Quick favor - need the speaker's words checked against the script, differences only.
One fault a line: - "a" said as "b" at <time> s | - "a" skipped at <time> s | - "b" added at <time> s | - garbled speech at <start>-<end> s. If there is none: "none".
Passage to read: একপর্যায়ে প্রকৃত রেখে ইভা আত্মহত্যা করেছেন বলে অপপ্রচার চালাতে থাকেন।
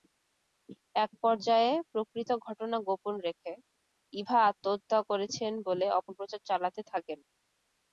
- "ঘটনা গোপন" added at 2.5 s